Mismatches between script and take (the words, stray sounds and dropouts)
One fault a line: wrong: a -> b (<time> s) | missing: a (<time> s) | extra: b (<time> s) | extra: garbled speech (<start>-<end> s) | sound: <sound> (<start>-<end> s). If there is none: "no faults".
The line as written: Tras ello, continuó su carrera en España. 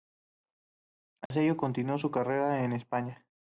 sound: dropout (1.3-1.3 s)